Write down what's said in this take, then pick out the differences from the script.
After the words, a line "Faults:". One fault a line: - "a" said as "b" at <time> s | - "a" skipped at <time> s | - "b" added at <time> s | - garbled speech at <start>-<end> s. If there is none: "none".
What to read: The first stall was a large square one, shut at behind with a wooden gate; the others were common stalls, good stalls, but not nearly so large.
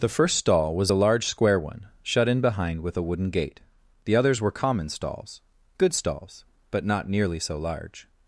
The first stall was a large square one, shut in behind with a wooden gate; the others were common stalls, good stalls, but not nearly so large.
Faults:
- "at" said as "in" at 2.3 s